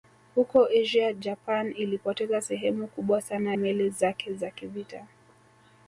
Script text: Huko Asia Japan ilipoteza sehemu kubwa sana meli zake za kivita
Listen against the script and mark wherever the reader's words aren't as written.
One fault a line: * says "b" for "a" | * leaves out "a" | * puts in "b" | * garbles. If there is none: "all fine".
all fine